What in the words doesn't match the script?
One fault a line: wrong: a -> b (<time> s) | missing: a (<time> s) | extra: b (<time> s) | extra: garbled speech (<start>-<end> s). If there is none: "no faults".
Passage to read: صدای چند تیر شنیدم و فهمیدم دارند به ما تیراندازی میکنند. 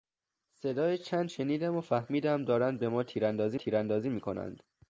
missing: تیر (1.3 s)
extra: تیراندازی (3.5 s)